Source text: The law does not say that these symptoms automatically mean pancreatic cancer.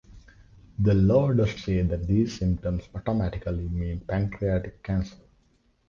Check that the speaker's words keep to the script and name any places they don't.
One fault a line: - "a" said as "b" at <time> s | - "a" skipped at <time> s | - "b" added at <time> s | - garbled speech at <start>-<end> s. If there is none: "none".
- "not" skipped at 1.6 s